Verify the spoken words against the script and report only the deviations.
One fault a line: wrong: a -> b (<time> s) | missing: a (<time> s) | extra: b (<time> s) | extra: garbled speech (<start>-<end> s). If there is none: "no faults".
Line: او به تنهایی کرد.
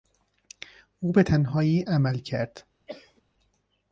extra: عمل (1.8 s)